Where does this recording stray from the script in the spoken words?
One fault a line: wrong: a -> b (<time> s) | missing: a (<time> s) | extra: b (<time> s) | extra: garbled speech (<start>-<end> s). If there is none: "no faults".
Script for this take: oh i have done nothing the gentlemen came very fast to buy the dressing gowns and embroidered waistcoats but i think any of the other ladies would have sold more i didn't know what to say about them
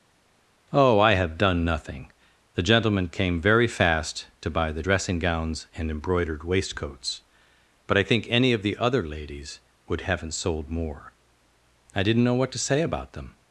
wrong: have -> haven't (10.0 s)